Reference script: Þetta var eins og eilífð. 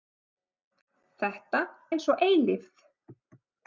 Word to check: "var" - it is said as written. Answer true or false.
false